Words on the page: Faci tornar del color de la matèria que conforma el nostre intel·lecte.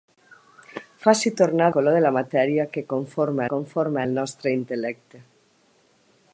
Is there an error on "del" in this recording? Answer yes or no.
yes